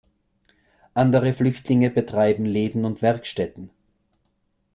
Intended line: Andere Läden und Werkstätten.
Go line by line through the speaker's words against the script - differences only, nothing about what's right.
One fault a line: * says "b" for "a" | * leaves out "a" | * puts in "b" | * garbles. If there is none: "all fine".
* puts in "Flüchtlinge betreiben"